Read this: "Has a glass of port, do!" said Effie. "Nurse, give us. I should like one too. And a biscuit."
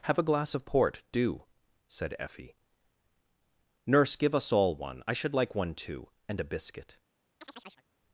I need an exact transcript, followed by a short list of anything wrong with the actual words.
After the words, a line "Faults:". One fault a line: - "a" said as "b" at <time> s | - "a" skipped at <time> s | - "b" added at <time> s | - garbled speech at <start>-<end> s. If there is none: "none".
"Have a glass of port, do!" said Effie. "Nurse, give us all one. I should like one too. And a biscuit."
Faults:
- "Has" said as "Have" at 0.0 s
- "all one" added at 4.5 s